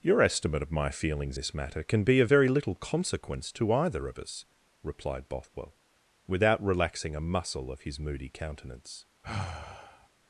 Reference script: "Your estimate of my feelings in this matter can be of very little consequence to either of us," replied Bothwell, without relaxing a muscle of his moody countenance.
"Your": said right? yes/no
yes